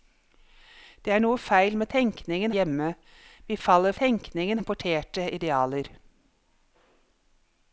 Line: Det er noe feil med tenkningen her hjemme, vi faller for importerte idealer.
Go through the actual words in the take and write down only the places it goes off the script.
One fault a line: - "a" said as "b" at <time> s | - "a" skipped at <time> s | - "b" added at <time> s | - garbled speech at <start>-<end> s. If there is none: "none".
- "her" skipped at 2.5 s
- "for" said as "tenkningen" at 4.0 s